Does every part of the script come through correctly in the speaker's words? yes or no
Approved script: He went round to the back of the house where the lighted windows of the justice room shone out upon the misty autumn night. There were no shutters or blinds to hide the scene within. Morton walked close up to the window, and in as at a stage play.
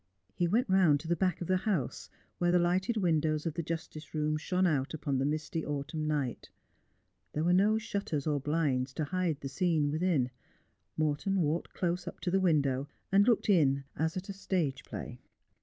no